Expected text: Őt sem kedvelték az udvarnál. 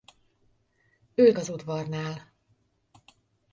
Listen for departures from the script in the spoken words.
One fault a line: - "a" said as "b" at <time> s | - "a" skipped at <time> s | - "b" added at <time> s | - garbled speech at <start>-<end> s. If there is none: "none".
- "sem kedvelték" skipped at 1.4 s